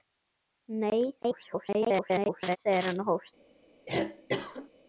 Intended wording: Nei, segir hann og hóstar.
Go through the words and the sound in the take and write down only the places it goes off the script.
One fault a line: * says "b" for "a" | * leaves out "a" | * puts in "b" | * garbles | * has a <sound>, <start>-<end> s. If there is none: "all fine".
* garbles
* has a cough, 3.9-4.7 s